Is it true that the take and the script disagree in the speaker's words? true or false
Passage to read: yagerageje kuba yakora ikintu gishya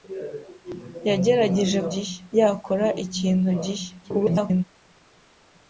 true